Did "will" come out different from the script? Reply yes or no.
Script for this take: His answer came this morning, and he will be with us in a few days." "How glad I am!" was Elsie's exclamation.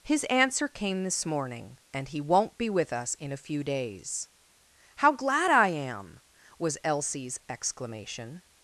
yes